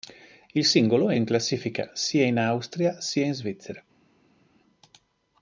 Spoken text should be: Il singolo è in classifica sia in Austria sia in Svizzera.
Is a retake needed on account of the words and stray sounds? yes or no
no